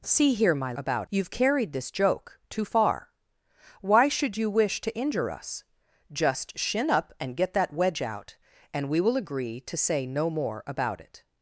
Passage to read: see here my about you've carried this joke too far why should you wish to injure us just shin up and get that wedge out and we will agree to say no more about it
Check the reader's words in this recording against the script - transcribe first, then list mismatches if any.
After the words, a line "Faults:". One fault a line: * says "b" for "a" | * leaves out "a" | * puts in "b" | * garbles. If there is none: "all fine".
see here my about you've carried this joke too far why should you wish to injure us just shin up and get that wedge out and we will agree to say no more about it
Faults:
all fine